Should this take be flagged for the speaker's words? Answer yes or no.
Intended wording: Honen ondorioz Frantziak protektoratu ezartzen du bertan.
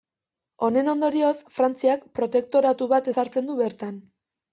yes